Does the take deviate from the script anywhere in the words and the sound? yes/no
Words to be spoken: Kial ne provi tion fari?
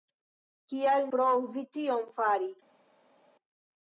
yes